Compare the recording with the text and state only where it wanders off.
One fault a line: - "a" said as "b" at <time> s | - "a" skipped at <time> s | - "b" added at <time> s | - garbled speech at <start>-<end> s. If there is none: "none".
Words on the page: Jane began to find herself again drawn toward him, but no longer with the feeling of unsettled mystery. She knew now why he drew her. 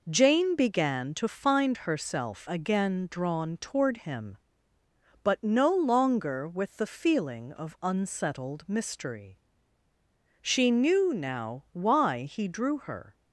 none